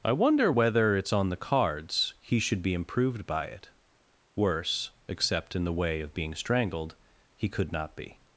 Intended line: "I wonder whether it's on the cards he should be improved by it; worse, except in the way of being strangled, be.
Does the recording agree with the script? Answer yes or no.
no